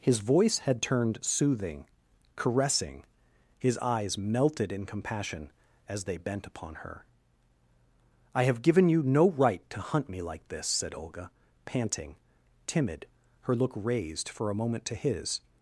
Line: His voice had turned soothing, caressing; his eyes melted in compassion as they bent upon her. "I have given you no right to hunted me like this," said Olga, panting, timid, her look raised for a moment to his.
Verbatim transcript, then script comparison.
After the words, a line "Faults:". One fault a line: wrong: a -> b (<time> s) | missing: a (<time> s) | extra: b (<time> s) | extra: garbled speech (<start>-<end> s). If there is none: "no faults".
His voice had turned soothing, caressing; his eyes melted in compassion as they bent upon her. "I have given you no right to hunt me like this," said Olga, panting, timid, her look raised for a moment to his.
Faults:
wrong: hunted -> hunt (9.8 s)